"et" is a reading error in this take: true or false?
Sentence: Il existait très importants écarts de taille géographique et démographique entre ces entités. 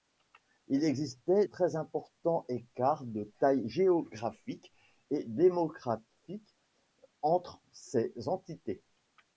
false